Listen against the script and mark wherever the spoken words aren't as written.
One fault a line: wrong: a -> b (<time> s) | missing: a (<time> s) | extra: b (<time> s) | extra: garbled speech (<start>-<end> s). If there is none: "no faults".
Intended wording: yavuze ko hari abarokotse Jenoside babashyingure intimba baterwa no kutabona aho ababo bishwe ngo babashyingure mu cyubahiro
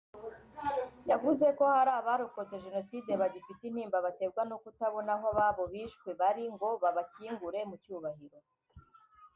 wrong: babashyingure -> bagifite (3.2 s)
extra: bari (6.2 s)